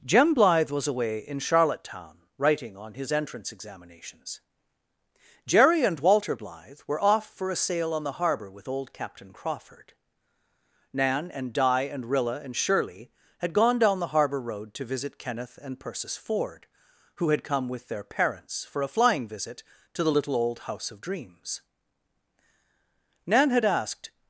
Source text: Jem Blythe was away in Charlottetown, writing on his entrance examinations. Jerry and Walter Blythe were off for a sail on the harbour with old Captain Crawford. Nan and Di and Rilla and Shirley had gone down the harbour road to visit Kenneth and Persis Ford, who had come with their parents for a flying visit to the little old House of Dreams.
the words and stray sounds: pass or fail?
fail